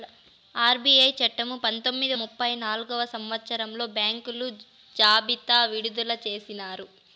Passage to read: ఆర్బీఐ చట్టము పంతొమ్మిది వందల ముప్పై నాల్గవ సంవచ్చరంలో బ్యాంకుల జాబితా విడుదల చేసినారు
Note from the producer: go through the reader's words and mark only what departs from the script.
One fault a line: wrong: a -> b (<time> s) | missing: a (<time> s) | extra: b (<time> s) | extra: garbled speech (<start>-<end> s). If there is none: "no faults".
missing: వందల (2.1 s)